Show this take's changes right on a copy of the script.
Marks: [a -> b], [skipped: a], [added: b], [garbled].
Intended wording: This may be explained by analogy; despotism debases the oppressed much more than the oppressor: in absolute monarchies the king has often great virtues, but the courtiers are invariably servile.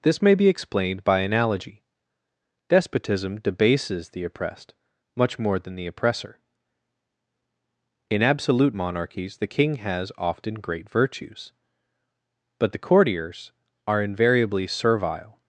This may be explained by analogy; despotism debases the oppressed much more than the oppressor: in absolute monarchies the king has often great virtues, but the courtiers are invariably servile.